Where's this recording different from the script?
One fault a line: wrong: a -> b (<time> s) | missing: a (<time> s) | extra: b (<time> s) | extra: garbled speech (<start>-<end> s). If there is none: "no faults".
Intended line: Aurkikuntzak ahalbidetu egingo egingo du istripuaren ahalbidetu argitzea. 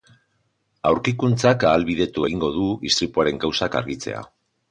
missing: egingo (2.5 s)
wrong: ahalbidetu -> kausak (3.5 s)